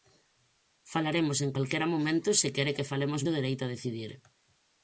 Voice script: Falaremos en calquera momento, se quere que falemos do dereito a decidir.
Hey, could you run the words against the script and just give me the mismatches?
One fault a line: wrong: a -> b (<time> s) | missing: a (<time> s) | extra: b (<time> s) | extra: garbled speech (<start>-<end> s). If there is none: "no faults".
no faults